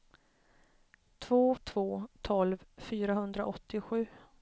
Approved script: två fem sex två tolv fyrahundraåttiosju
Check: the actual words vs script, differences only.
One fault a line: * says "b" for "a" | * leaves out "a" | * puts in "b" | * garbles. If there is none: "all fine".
* leaves out "fem sex"